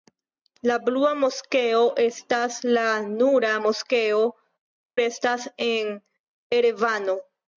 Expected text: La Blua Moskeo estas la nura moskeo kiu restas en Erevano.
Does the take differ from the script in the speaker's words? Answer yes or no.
yes